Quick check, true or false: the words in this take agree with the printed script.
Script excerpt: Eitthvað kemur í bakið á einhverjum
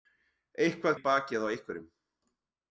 false